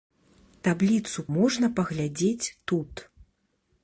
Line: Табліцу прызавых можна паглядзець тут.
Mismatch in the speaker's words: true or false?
true